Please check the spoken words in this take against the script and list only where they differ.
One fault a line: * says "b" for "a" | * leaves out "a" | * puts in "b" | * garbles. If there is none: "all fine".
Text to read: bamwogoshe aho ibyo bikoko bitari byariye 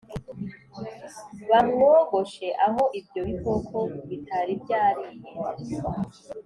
all fine